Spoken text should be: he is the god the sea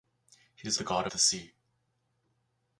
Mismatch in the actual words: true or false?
false